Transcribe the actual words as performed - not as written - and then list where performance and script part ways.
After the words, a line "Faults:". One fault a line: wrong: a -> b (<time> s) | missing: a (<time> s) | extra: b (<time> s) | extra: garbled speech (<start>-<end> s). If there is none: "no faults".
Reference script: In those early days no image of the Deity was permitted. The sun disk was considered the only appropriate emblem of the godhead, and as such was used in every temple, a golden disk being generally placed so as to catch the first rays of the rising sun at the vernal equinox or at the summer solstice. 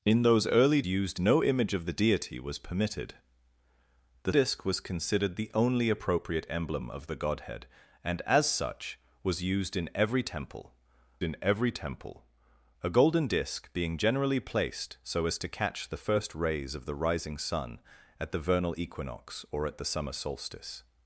In those early used no image of the Deity was permitted. The disk was considered the only appropriate emblem of the godhead, and as such was used in every temple in every temple, a golden disk being generally placed so as to catch the first rays of the rising sun at the vernal equinox or at the summer solstice.
Faults:
wrong: days -> used (0.8 s)
missing: sun (4.3 s)
extra: in every temple (11.2 s)